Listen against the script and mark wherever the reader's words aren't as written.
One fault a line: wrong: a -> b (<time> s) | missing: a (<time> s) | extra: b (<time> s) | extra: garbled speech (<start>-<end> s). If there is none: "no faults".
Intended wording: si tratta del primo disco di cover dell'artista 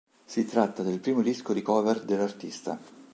no faults